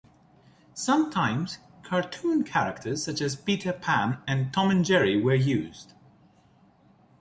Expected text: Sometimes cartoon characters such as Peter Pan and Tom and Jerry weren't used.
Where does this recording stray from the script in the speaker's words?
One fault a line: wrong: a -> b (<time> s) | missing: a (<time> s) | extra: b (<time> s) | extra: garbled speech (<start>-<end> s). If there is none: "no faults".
wrong: weren't -> were (5.2 s)